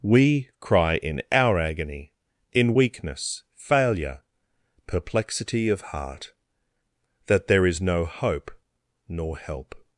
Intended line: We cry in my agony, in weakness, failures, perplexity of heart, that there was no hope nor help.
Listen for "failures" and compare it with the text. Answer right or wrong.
wrong